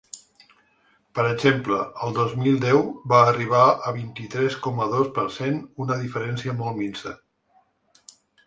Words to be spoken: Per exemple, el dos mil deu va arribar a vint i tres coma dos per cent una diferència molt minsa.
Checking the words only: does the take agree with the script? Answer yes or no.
yes